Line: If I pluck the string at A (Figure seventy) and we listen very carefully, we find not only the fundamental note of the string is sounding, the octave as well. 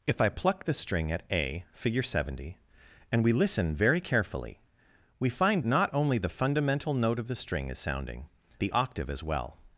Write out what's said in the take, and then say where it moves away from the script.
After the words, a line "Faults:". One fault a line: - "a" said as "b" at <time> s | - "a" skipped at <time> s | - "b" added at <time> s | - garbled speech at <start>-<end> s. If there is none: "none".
If I pluck the string at A (Figure seventy) and we listen very carefully, we find not only the fundamental note of the string is sounding, the octave as well.
Faults:
none